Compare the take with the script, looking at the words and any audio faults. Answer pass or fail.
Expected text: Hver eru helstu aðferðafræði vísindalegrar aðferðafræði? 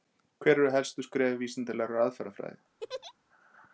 fail